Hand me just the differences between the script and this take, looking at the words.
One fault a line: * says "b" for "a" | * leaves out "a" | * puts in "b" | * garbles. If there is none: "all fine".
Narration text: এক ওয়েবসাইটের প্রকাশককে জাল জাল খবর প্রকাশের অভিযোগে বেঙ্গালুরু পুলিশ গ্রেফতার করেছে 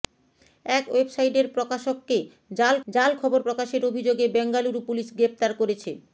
all fine